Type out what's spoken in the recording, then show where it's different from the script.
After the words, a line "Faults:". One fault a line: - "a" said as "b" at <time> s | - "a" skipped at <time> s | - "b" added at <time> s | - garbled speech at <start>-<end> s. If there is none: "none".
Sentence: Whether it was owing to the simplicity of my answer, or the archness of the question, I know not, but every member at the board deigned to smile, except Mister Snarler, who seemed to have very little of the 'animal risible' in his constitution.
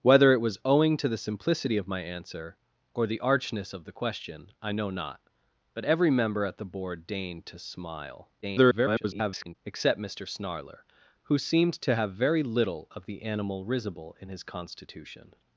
Whether it was owing to the simplicity of my answer, or the archness of the question, I know not, but every member at the board deigned to smile, [garbled] except Mister Snarler, who seemed to have very little of the 'animal risible' in his constitution.
Faults:
- garbled speech at 8.4-9.5 s